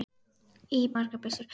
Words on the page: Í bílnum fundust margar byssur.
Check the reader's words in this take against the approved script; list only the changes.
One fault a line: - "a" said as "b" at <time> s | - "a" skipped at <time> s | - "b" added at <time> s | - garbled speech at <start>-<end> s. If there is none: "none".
- "bílnum fundust" skipped at 0.8 s